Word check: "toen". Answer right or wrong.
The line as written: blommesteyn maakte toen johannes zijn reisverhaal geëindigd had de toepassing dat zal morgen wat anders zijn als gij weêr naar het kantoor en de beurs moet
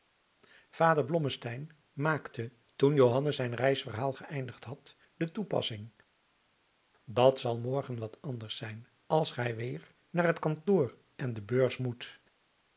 right